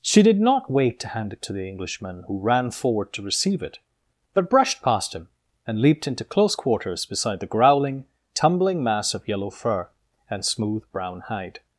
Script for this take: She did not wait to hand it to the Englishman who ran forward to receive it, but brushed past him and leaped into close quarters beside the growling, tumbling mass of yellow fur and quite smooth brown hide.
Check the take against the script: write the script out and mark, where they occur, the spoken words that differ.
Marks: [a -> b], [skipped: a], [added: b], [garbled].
She did not wait to hand it to the Englishman who ran forward to receive it, but brushed past him and leaped into close quarters beside the growling, tumbling mass of yellow fur and [skipped: quite] smooth brown hide.